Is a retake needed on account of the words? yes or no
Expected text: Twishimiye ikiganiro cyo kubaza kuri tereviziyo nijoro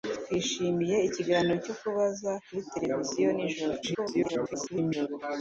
yes